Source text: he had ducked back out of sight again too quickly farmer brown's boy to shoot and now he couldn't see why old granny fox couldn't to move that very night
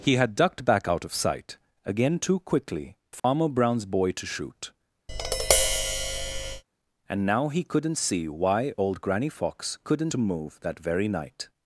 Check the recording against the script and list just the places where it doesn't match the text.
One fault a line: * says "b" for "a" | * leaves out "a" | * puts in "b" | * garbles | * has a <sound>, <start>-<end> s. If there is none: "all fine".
* has a dropout, 3.2-3.2 s
* has a tap, 5.1-6.6 s